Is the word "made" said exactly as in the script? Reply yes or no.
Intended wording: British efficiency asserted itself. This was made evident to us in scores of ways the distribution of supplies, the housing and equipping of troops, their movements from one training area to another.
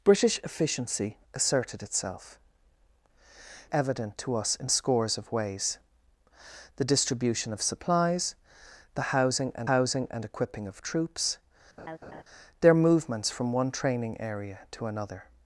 no